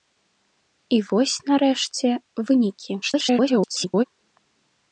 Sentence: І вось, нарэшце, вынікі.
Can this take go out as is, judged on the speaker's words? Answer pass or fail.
fail